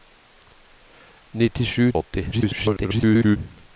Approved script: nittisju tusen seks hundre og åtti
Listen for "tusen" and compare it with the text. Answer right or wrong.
wrong